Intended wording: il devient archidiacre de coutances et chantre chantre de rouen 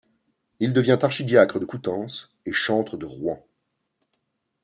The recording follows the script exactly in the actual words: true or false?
false